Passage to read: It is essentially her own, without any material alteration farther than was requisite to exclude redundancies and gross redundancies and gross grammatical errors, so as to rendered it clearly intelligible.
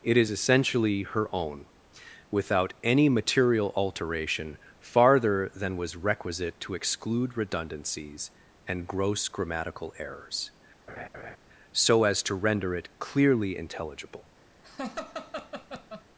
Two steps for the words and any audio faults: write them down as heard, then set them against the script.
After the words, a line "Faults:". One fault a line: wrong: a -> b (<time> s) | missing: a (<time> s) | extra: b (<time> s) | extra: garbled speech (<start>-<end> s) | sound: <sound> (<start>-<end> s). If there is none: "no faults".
It is essentially her own, without any material alteration farther than was requisite to exclude redundancies and gross grammatical errors, so as to render it clearly intelligible.
Faults:
missing: redundancies and gross (9.3 s)
sound: laugh (10.9-11.4 s)
wrong: rendered -> render (12.3 s)
sound: laugh (14.6-16.0 s)